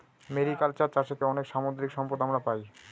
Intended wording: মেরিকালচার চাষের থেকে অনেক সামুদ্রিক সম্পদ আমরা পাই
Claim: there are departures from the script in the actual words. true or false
true